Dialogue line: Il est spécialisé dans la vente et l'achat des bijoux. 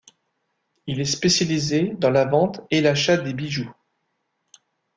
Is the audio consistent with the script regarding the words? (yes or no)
yes